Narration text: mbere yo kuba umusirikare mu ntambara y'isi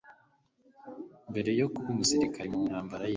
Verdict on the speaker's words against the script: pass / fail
pass